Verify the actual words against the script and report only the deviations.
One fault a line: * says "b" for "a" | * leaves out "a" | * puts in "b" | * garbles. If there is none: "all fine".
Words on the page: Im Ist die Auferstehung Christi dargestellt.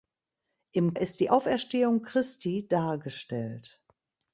all fine